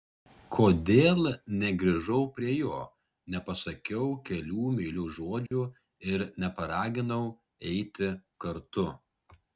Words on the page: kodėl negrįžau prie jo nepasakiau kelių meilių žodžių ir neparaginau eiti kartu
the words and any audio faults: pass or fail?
fail